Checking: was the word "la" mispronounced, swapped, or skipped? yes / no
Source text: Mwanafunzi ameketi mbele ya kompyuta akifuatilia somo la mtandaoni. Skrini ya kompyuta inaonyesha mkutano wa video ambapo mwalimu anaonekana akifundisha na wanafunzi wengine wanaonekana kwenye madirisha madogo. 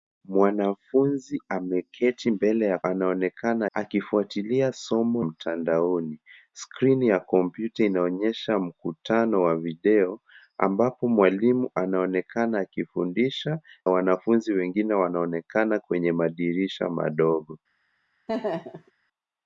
yes